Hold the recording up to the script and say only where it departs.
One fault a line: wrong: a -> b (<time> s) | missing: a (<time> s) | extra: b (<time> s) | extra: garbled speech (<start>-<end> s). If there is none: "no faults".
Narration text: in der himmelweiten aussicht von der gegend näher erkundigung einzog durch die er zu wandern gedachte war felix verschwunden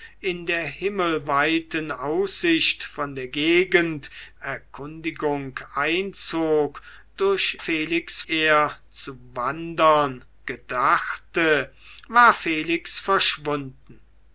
missing: näher (4.1 s)
wrong: die -> felix (7.6 s)